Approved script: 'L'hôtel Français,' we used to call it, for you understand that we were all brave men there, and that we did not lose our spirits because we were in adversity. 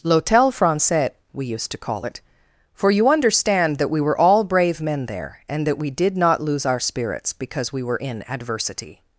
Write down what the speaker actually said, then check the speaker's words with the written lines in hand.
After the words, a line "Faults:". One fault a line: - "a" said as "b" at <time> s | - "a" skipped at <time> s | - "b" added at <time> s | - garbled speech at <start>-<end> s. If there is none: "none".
'L'hôtel Français,' we used to call it, for you understand that we were all brave men there, and that we did not lose our spirits because we were in adversity.
Faults:
none